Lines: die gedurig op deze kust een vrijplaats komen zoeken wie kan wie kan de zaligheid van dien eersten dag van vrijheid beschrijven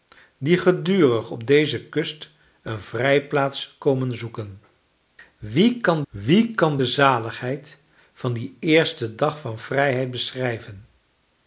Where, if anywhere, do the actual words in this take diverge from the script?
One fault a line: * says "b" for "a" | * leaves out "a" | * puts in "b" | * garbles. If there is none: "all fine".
all fine